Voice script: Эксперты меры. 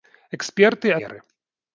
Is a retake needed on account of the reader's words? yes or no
no